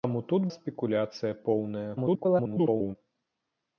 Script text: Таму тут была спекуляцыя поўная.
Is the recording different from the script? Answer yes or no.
yes